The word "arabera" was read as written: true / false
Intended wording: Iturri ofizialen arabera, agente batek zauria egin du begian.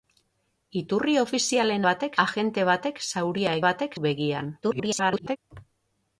false